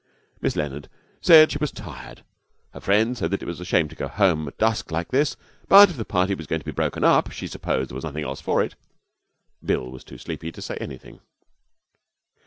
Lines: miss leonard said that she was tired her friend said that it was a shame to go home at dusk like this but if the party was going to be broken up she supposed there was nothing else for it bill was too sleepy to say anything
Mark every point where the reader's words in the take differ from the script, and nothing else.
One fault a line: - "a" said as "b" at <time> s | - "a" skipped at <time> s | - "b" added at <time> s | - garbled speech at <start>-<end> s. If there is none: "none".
- "that" skipped at 1.5 s